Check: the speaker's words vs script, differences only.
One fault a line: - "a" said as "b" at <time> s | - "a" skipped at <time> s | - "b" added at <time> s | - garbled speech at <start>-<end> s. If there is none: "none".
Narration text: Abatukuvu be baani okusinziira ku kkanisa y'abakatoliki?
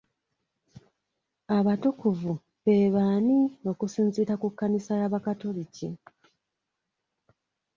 none